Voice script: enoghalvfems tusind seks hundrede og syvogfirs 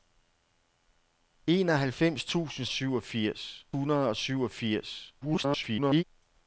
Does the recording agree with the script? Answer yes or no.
no